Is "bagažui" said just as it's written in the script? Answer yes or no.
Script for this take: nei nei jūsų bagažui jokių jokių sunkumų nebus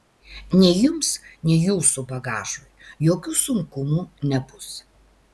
yes